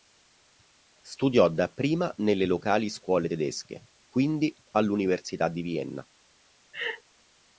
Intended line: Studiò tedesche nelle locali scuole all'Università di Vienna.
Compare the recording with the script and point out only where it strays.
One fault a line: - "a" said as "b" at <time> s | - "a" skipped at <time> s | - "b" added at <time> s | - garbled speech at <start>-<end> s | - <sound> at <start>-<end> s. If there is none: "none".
- "tedesche" said as "dapprima" at 1.5 s
- "tedesche quindi" added at 3.3 s
- laugh at 6.7-7.0 s